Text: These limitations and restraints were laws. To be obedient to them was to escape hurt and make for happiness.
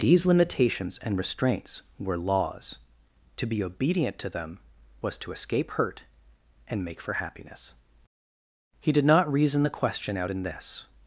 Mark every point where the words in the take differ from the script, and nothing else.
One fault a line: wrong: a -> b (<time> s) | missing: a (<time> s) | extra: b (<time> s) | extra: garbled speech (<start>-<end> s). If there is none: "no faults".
extra: He did not reason the question out in this (8.8 s)